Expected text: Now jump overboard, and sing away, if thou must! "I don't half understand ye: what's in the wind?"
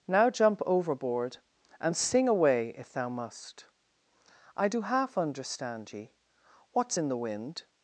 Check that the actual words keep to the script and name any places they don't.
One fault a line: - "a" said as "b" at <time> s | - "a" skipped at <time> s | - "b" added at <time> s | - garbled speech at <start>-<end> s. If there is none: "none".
- "don't" said as "do" at 4.7 s